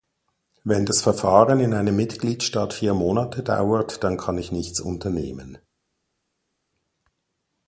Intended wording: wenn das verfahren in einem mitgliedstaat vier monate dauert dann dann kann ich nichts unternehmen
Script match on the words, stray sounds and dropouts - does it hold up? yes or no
no